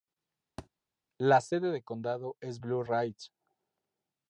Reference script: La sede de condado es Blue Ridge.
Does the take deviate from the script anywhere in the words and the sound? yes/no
yes